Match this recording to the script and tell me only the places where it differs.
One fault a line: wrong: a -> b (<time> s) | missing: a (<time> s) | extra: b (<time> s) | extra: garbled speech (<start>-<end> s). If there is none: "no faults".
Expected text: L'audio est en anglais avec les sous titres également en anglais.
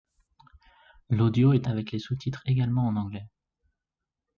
missing: en anglais (1.7 s)